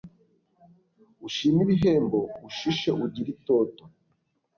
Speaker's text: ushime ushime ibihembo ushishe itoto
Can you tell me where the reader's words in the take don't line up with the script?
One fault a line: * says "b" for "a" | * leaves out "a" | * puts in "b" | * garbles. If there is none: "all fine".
* leaves out "ushime"
* puts in "ugire"